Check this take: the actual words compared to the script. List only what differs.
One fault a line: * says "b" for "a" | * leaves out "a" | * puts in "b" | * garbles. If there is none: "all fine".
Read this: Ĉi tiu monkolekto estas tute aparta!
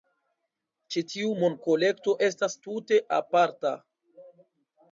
all fine